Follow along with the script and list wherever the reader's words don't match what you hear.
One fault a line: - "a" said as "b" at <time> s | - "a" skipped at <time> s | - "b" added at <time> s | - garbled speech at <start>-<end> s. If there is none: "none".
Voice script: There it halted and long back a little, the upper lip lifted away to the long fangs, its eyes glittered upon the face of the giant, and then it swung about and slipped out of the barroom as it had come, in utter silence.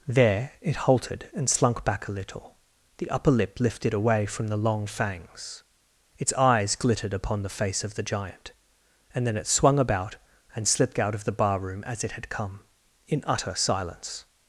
- "long" said as "slunk" at 1.5 s
- "to" said as "from" at 4.2 s